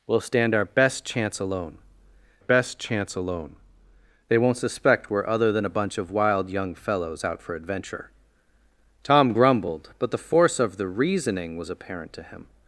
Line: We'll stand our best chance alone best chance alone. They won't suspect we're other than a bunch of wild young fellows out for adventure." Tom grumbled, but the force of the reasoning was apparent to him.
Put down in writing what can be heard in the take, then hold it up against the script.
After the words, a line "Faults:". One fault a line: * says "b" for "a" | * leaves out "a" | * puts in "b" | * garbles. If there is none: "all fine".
We'll stand our best chance alone best chance alone. They won't suspect we're other than a bunch of wild young fellows out for adventure." Tom grumbled, but the force of the reasoning was apparent to him.
Faults:
all fine